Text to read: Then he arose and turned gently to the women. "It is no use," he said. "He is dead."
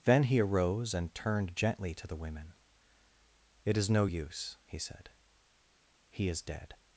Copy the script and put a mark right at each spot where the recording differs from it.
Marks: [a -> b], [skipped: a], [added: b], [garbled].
Then he arose and turned gently to the women. "It is no use," he said. "He is dead."